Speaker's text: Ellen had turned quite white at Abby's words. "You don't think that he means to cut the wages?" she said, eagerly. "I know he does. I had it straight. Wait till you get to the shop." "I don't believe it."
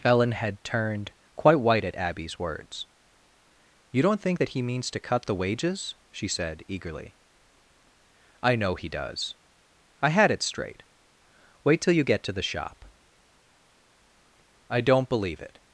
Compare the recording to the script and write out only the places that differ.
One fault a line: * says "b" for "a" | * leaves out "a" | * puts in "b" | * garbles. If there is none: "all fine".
all fine